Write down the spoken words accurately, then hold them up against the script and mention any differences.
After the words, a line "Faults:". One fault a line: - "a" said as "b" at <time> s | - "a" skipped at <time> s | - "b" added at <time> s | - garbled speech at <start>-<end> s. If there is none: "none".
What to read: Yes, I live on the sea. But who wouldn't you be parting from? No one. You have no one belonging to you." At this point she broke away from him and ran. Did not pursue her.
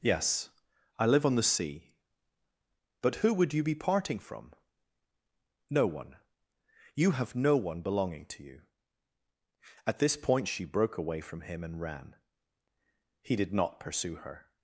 Yes, I live on the sea. But who would you be parting from? No one. You have no one belonging to you." At this point she broke away from him and ran. He did not pursue her.
Faults:
- "wouldn't" said as "would" at 3.3 s
- "He" added at 13.2 s